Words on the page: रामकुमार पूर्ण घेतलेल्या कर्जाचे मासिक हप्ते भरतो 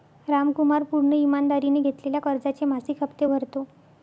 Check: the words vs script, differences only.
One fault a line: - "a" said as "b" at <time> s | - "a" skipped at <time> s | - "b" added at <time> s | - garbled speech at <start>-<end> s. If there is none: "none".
- "ईमानदारीने" added at 1.1 s